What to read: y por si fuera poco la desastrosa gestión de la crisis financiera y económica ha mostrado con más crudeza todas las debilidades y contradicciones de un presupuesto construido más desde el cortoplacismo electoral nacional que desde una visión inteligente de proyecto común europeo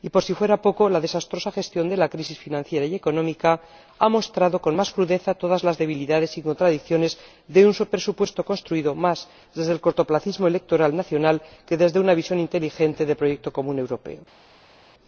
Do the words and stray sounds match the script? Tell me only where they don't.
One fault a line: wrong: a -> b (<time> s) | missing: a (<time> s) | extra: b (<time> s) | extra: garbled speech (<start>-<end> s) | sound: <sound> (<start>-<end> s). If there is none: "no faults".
no faults